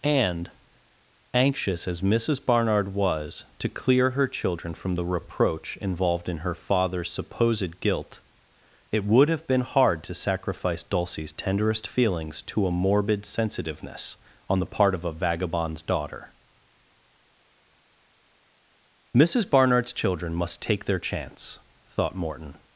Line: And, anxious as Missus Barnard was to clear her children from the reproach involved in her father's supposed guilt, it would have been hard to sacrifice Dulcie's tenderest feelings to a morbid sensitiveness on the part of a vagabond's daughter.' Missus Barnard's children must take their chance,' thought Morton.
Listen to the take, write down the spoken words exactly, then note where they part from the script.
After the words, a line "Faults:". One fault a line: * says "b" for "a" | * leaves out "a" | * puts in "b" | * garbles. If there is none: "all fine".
And, anxious as Missus Barnard was to clear her children from the reproach involved in her father's supposed guilt, it would have been hard to sacrifice Dulcie's tenderest feelings to a morbid sensitiveness on the part of a vagabond's daughter.' Missus Barnard's children must take their chance,' thought Morton.
Faults:
all fine